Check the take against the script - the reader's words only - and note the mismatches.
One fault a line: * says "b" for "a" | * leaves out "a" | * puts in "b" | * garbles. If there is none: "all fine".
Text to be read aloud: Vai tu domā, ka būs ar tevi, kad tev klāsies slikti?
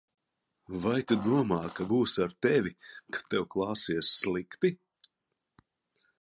all fine